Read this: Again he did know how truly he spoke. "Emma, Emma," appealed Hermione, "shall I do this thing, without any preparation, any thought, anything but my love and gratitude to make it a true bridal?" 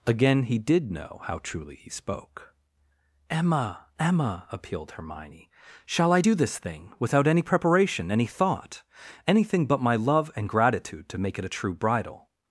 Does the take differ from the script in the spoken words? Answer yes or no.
no